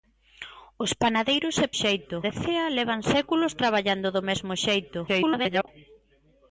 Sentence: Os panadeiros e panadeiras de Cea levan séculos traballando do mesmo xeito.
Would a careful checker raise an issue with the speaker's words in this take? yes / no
yes